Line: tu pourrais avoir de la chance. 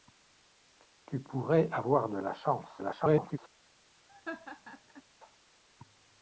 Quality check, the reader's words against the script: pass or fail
fail